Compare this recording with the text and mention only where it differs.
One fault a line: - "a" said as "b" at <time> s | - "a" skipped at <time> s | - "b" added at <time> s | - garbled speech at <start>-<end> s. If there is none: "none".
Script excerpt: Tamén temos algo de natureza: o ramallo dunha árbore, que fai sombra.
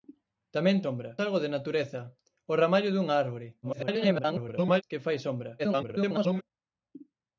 - "temos" said as "sombra" at 0.8 s
- garbled speech at 3.6-4.8 s
- garbled speech at 5.6-6.4 s